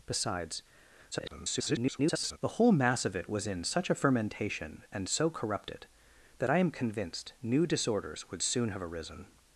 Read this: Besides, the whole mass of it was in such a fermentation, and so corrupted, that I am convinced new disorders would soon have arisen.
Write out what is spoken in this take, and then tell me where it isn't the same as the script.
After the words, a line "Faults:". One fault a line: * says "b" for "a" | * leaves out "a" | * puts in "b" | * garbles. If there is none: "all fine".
Besides, [garbled] the whole mass of it was in such a fermentation, and so corrupted, that I am convinced new disorders would soon have arisen.
Faults:
* garbles